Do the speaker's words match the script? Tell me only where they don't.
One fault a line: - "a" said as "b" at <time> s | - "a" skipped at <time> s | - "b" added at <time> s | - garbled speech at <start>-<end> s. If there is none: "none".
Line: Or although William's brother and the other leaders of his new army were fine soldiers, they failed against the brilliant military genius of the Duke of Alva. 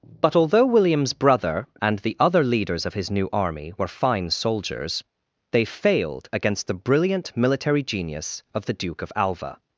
- "Or" said as "But" at 0.2 s